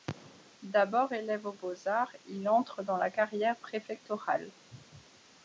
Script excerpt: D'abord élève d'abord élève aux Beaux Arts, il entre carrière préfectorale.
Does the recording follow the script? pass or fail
fail